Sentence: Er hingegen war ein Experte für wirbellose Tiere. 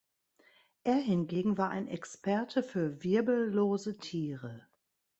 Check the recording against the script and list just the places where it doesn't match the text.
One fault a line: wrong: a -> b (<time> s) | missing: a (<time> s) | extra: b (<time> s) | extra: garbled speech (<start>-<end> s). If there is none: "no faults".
no faults